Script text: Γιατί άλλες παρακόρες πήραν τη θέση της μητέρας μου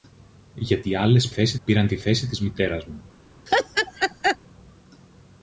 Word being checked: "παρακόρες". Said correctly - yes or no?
no